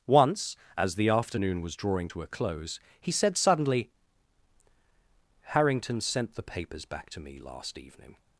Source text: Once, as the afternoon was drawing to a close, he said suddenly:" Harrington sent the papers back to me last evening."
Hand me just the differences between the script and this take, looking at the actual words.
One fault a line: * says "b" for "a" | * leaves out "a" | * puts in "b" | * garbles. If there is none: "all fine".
all fine